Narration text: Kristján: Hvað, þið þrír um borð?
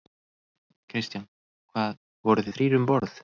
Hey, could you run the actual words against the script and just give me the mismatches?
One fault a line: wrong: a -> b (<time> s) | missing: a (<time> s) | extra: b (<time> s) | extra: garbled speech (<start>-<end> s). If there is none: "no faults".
extra: voruð (2.3 s)